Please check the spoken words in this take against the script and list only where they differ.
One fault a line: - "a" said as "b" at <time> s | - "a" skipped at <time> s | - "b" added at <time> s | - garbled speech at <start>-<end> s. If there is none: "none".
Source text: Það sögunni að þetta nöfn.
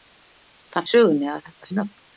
none